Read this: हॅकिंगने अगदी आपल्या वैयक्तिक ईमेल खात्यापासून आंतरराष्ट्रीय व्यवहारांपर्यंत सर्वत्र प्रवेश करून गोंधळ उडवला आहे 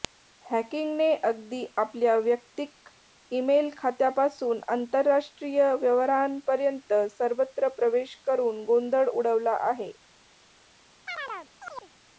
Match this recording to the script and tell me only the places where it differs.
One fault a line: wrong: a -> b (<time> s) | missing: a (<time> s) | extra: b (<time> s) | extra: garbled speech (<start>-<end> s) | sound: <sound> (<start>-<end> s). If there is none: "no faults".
sound: chirp (11.1-11.9 s)